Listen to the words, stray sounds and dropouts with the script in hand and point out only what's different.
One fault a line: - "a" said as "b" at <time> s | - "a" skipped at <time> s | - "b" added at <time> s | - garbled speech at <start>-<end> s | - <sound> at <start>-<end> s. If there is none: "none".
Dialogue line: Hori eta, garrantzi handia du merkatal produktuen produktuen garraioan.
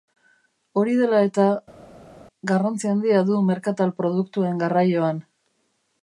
- "dela" added at 1.0 s
- "produktuen" skipped at 4.6 s